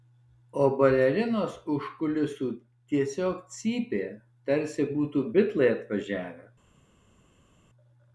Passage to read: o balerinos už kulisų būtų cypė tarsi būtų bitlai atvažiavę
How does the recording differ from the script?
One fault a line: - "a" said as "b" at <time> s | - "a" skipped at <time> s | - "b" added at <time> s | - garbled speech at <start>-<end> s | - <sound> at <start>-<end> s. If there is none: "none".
- "būtų" said as "tiesiog" at 2.9 s